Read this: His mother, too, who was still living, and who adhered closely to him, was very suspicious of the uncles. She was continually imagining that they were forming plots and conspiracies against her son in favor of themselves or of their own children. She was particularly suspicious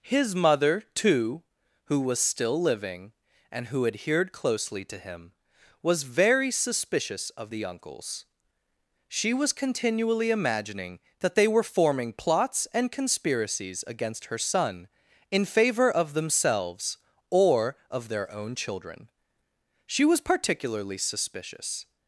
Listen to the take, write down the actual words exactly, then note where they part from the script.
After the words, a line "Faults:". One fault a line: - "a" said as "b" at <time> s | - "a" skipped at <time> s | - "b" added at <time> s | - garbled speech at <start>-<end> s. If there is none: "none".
His mother, too, who was still living, and who adhered closely to him, was very suspicious of the uncles. She was continually imagining that they were forming plots and conspiracies against her son in favor of themselves or of their own children. She was particularly suspicious
Faults:
none